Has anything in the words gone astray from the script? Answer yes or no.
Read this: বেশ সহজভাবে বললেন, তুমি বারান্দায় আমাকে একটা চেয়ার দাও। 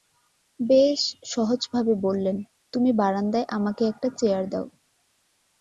no